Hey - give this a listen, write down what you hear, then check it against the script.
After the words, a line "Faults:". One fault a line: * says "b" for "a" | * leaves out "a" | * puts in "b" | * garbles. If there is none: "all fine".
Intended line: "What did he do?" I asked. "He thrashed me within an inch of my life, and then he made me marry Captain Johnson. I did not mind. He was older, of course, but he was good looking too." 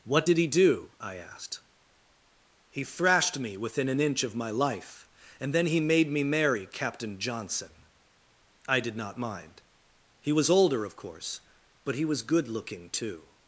"What did he do?" I asked. "He thrashed me within an inch of my life, and then he made me marry Captain Johnson. I did not mind. He was older, of course, but he was good looking too."
Faults:
all fine